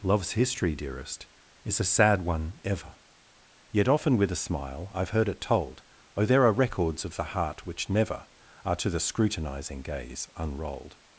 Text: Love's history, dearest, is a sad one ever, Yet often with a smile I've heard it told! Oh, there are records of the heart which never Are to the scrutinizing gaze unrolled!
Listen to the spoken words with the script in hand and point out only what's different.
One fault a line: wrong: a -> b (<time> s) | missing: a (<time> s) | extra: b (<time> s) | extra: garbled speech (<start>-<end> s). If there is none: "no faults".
no faults